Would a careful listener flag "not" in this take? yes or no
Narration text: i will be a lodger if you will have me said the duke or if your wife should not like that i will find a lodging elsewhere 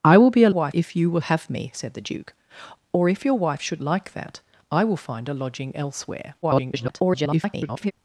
yes